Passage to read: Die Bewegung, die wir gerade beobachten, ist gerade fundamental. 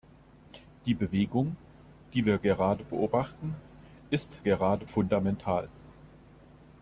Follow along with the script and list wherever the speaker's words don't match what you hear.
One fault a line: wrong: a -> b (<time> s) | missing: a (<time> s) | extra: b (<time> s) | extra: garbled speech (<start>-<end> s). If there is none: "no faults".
no faults